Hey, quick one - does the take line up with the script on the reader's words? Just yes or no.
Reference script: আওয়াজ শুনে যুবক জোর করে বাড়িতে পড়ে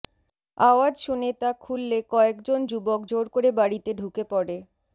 no